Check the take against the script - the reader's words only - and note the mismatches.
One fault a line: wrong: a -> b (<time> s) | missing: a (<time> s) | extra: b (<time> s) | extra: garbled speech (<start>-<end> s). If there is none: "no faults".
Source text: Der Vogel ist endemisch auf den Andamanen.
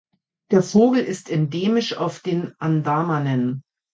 no faults